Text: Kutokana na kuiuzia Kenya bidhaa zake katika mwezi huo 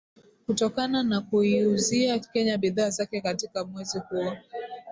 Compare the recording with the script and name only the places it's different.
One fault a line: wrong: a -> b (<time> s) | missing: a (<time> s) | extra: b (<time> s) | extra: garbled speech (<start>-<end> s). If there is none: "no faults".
no faults